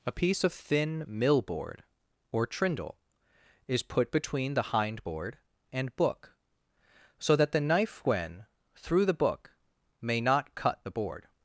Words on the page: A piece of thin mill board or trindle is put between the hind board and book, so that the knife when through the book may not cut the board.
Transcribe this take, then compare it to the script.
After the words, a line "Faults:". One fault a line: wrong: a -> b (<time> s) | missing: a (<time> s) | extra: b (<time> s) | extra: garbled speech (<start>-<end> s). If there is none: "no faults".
A piece of thin mill board or trindle is put between the hind board and book, so that the knife when through the book may not cut the board.
Faults:
no faults